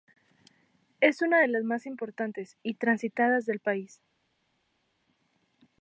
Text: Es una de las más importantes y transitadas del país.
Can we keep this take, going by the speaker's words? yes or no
yes